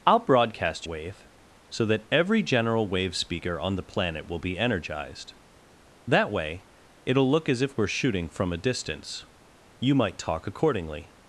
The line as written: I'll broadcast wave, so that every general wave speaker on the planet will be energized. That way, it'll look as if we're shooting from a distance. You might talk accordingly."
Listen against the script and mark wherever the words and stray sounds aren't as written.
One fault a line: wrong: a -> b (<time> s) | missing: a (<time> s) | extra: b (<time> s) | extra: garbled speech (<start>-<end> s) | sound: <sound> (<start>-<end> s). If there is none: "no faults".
no faults